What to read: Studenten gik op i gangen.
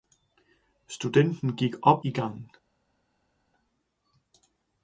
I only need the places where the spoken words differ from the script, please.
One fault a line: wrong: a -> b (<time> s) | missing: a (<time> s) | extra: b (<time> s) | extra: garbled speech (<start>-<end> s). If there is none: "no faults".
no faults